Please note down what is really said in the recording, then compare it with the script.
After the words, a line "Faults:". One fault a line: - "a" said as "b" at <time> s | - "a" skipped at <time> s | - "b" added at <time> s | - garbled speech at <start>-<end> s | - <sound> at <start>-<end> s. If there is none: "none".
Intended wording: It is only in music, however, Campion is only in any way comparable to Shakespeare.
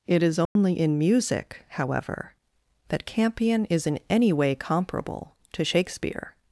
It is only in music, however, that Campion is in any way comparable to Shakespeare.
Faults:
- dropout at 0.5-0.6 s
- "that" added at 2.9 s
- "only" skipped at 3.9 s